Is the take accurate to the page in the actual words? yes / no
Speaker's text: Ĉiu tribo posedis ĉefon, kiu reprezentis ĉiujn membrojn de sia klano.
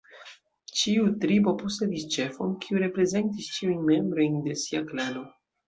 yes